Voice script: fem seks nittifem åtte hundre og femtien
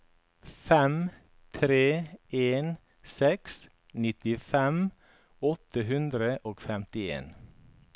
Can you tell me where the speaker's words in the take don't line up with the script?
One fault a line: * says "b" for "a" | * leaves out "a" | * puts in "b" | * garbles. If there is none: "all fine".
* puts in "tre en"